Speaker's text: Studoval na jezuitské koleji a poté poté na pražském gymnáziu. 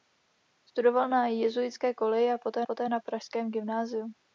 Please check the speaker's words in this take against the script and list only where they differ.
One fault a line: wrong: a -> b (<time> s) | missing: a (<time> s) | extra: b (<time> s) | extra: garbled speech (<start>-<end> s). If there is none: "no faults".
no faults